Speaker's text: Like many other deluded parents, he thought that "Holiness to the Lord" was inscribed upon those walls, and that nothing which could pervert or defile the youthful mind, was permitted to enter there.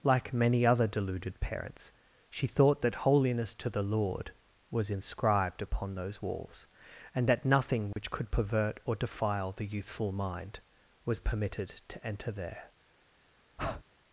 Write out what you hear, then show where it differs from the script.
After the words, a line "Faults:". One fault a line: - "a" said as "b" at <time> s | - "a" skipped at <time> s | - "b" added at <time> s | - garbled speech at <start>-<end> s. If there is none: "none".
Like many other deluded parents, she thought that "Holiness to the Lord" was inscribed upon those walls, and that nothing which could pervert or defile the youthful mind, was permitted to enter there.
Faults:
- "he" said as "she" at 2.3 s